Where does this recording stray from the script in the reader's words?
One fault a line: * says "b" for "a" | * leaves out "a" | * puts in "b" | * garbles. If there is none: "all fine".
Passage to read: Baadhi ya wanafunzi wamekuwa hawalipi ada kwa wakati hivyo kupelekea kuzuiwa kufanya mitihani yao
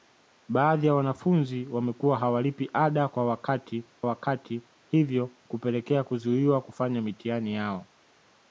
* puts in "wakati"